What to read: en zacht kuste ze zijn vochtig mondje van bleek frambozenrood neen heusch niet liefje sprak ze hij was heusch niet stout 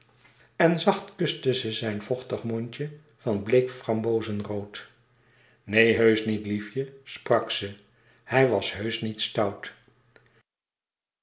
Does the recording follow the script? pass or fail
pass